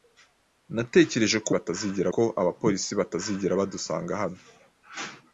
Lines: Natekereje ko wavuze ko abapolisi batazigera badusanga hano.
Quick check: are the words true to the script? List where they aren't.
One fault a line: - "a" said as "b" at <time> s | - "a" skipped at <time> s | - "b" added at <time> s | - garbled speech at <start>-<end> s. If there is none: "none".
- "wavuze" said as "batazigera" at 1.5 s